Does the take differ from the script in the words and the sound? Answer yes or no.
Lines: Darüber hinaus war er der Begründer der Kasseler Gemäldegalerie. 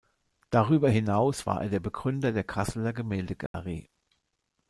yes